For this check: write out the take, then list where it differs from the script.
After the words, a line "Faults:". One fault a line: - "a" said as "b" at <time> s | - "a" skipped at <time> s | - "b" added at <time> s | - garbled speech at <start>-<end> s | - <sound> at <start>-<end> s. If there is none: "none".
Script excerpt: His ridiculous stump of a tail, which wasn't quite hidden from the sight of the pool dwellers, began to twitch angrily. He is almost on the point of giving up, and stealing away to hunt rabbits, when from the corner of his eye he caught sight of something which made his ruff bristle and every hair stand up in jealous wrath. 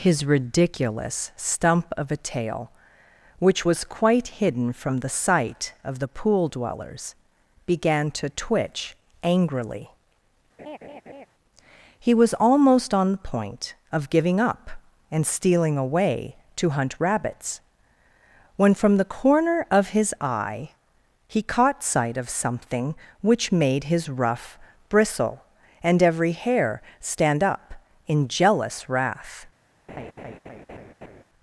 His ridiculous stump of a tail, which was quite hidden from the sight of the pool dwellers, began to twitch angrily. He was almost on the point of giving up, and stealing away to hunt rabbits, when from the corner of his eye he caught sight of something which made his ruff bristle and every hair stand up in jealous wrath.
Faults:
- "wasn't" said as "was" at 3.6 s
- laugh at 10.6-11.3 s
- "is" said as "was" at 12.1 s
- laugh at 29.9-31.2 s